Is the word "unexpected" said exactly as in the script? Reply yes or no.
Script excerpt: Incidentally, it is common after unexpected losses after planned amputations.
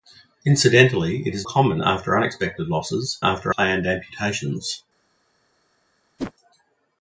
yes